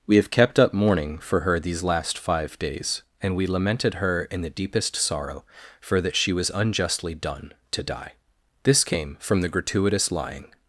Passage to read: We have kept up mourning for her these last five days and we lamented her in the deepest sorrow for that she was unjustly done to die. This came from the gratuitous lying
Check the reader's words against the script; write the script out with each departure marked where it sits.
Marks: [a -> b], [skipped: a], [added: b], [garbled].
We have kept up mourning for her these last five days and we lamented her in the deepest sorrow for that she was unjustly done to die. This came from the gratuitous lying